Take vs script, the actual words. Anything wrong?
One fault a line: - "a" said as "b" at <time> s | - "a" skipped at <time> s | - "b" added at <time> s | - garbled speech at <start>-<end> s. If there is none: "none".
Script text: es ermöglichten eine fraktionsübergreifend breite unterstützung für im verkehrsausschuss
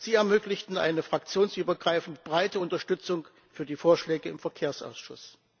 - "es" said as "sie" at 0.0 s
- "die vorschläge" added at 3.6 s